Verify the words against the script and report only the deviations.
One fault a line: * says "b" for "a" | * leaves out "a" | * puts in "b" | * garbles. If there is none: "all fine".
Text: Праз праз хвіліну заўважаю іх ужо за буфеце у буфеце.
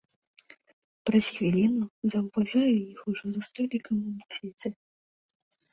* leaves out "праз"
* says "столікам" for "буфеце"